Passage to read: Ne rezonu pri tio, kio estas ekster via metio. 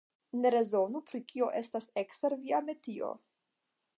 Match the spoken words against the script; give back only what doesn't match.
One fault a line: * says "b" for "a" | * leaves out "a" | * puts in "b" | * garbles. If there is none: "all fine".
* leaves out "tio"